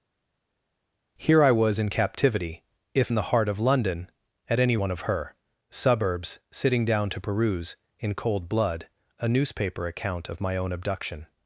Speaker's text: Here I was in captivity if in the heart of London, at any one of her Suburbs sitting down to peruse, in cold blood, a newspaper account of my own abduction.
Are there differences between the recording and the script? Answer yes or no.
no